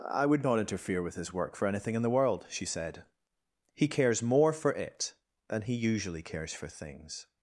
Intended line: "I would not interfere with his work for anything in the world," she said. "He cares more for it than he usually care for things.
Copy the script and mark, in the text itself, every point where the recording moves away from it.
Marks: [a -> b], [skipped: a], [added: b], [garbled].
"I would not interfere with his work for anything in the world," she said. "He cares more for it than he usually [care -> cares] for things.